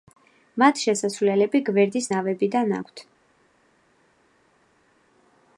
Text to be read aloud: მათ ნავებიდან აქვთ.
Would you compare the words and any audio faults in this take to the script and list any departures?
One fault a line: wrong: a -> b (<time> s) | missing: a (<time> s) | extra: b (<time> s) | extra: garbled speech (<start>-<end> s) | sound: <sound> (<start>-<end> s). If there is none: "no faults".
extra: შესასვლელები გვერდის (0.8 s)